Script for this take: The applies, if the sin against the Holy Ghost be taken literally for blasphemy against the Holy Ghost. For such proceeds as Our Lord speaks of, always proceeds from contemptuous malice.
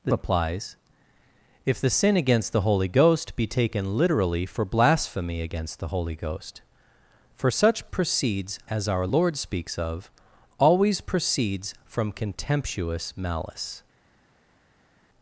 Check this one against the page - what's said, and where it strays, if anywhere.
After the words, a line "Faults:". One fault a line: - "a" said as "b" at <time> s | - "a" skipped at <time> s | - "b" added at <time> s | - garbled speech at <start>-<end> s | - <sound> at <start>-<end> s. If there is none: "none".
The applies, if the sin against the Holy Ghost be taken literally for blasphemy against the Holy Ghost. For such proceeds as Our Lord speaks of, always proceeds from contemptuous malice.
Faults:
none